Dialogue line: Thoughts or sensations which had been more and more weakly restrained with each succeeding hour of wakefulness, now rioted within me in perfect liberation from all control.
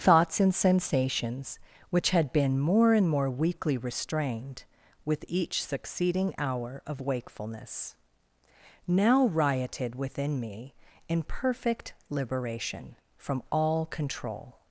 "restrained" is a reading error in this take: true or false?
false